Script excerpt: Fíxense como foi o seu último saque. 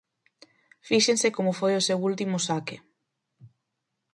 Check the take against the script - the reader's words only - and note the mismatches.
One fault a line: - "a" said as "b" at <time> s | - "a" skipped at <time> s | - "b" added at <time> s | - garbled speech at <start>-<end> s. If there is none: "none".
none